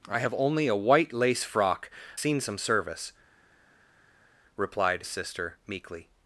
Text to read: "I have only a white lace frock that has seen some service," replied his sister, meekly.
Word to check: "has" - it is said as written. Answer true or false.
false